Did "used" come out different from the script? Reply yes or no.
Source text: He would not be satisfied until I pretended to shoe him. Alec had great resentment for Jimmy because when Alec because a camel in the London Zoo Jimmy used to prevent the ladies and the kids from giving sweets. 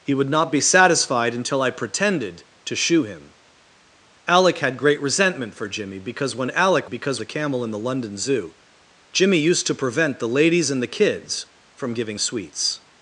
no